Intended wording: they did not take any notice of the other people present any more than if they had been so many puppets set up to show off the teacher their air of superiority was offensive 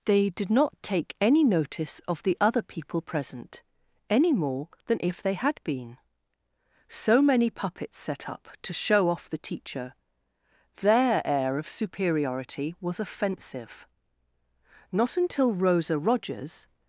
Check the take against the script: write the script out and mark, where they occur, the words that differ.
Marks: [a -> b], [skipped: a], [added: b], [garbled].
they did not take any notice of the other people present any more than if they had been so many puppets set up to show off the teacher their air of superiority was offensive [added: not until rosa rogers]